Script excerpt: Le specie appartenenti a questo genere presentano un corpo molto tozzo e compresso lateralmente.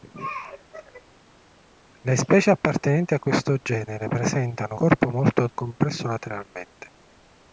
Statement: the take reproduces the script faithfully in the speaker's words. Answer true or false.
false